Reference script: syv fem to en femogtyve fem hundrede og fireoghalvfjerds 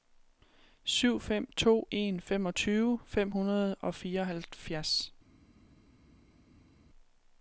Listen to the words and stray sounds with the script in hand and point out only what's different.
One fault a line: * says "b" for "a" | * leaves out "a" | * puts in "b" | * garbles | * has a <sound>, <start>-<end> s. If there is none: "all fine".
all fine